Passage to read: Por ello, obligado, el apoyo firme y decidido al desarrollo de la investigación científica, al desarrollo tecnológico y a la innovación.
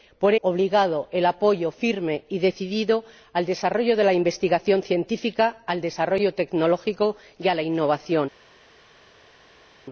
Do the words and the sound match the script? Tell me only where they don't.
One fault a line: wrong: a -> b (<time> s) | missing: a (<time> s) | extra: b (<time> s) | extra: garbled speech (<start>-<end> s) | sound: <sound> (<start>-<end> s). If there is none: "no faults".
missing: ello (0.3 s)